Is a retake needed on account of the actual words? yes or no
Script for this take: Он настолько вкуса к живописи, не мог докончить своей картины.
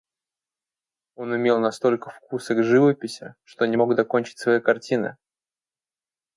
yes